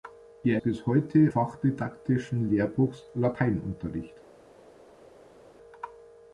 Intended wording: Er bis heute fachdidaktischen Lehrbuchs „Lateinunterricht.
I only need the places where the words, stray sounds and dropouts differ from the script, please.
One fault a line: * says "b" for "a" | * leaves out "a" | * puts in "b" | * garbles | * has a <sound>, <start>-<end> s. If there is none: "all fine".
all fine